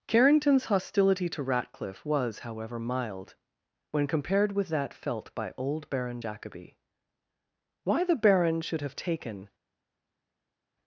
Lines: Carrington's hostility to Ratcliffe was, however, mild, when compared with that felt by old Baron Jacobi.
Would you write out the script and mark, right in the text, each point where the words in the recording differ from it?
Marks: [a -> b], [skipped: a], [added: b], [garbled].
Carrington's hostility to Ratcliffe was, however, mild, when compared with that felt by old Baron Jacobi. [added: Why the baron should have taken]